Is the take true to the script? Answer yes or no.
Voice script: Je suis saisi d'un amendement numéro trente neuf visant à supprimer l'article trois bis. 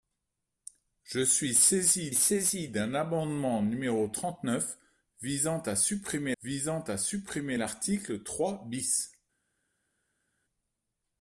no